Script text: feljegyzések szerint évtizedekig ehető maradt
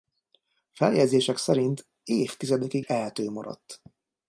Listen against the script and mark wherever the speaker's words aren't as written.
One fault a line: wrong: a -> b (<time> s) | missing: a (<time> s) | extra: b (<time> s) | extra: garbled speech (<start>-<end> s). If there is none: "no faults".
no faults